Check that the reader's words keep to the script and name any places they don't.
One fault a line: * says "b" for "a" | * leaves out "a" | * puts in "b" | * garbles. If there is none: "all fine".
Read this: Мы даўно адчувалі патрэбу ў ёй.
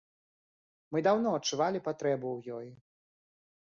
all fine